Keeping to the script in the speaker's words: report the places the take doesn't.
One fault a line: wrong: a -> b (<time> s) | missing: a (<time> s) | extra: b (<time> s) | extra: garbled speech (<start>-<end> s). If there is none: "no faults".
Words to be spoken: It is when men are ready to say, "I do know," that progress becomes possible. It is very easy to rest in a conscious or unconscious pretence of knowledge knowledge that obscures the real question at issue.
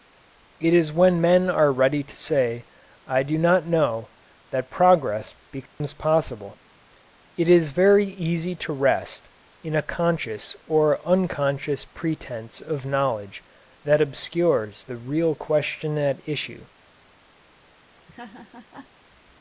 extra: not (3.4 s)
missing: knowledge (13.4 s)